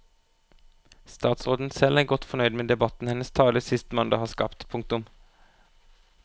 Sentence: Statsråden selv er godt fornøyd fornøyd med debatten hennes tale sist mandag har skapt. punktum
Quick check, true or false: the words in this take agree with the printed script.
false